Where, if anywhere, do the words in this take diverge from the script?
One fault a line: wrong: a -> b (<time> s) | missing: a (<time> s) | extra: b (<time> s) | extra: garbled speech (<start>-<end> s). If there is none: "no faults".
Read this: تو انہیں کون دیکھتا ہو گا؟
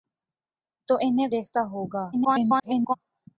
missing: کون (1.3 s)
extra: garbled speech (2.1-2.9 s)